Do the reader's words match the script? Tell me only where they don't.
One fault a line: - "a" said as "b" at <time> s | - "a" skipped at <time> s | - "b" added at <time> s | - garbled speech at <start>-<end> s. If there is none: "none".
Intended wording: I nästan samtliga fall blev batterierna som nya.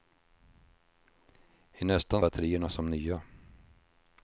- "samtliga fall blev" skipped at 2.2 s